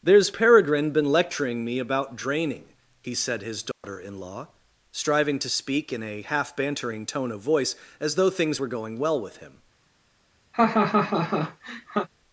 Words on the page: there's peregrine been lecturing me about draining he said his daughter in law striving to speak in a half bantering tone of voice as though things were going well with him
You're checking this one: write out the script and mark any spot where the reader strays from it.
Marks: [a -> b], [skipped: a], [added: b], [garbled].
there's peregrine been lecturing me about draining he said his daughter in law striving to speak in a half bantering tone of voice as though things were going well with him